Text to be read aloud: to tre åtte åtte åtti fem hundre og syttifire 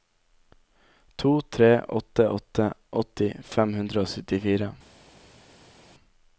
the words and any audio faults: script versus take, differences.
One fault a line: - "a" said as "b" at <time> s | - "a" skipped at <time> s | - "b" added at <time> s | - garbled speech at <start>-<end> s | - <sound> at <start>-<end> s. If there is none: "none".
none